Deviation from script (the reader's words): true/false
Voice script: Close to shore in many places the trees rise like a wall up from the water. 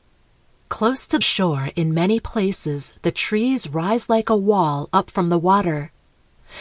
false